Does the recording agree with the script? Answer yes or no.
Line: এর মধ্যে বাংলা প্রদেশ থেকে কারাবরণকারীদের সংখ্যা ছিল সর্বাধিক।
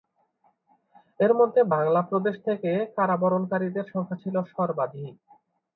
yes